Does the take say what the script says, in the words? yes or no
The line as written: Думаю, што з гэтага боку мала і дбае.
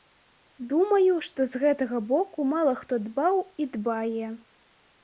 no